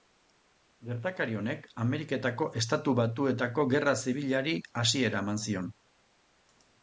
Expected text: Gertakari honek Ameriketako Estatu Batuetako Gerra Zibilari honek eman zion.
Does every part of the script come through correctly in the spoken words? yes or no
no